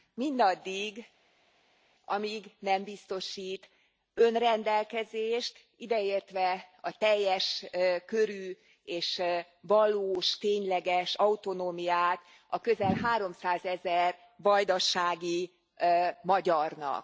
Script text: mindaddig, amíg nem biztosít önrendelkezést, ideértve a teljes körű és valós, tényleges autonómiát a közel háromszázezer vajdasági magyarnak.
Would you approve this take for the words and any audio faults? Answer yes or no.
yes